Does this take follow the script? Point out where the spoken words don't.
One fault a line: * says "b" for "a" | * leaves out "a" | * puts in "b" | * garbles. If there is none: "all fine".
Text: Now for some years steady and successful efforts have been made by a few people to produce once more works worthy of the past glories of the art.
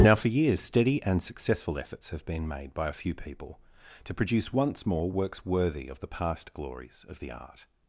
* leaves out "some"